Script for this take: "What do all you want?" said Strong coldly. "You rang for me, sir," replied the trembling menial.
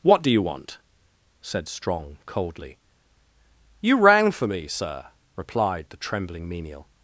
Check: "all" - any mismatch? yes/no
yes